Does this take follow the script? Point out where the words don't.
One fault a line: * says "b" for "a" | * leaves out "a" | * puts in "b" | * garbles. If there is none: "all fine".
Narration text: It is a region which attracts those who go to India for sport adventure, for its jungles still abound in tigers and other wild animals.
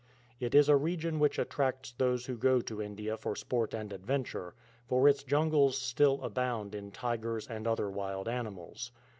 * puts in "and"